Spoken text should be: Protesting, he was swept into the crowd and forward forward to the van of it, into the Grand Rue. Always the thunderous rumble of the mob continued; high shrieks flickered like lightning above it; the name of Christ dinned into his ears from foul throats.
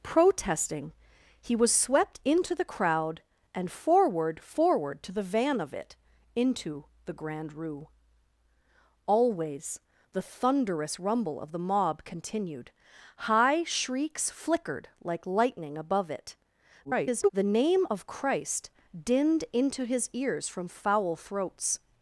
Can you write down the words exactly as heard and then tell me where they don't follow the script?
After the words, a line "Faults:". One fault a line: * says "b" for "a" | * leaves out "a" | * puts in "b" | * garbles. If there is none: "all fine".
Protesting, he was swept into the crowd and forward forward to the van of it, into the Grand Rue. Always the thunderous rumble of the mob continued; high shrieks flickered like lightning above it; [garbled] the name of Christ dinned into his ears from foul throats.
Faults:
* garbles